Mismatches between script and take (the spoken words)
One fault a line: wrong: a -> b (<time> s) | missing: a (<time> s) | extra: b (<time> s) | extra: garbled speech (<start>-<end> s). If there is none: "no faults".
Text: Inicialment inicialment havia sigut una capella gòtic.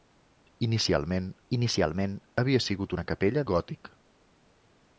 no faults